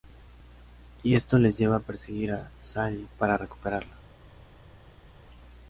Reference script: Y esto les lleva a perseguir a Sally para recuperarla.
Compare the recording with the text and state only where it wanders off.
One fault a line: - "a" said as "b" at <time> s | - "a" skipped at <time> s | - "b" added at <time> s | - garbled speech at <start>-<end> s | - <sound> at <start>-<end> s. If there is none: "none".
none